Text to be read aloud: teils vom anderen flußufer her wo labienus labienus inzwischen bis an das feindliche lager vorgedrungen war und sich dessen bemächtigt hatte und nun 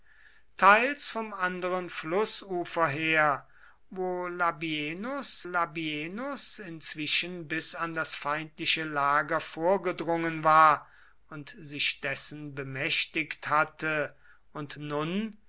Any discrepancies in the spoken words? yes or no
no